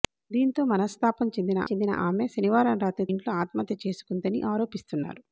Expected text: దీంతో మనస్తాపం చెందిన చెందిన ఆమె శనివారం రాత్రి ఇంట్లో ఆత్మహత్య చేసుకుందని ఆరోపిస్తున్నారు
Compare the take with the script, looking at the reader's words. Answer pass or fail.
pass